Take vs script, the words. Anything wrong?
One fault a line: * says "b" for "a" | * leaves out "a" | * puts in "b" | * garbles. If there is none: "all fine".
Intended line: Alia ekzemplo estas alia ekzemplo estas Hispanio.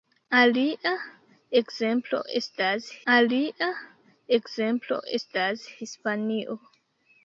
all fine